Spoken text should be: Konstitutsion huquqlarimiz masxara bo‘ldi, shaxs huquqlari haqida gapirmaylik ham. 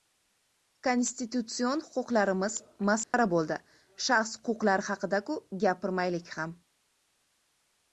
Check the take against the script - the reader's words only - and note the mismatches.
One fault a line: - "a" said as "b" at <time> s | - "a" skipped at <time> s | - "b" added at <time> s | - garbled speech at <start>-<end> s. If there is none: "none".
- "ku" added at 5.3 s